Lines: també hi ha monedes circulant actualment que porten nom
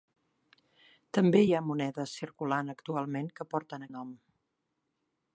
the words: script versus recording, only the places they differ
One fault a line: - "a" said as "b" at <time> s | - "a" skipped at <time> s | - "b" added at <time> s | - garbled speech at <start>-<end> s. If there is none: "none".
none